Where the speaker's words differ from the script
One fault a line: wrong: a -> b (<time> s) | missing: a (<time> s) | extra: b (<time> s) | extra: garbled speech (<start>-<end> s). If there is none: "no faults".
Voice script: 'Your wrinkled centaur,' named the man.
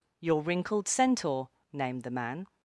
no faults